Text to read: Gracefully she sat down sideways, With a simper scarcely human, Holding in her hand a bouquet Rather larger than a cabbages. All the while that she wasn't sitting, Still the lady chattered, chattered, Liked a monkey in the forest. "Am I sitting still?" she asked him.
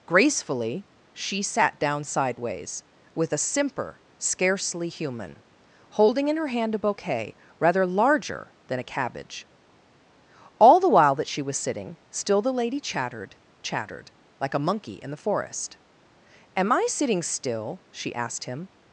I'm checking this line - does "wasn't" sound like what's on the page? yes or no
no